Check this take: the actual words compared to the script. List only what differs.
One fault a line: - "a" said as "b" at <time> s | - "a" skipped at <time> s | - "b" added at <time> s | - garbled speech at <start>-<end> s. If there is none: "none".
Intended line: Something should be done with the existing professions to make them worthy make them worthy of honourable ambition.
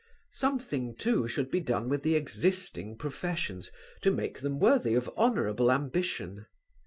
- "too" added at 0.9 s
- "make them worthy" skipped at 4.9 s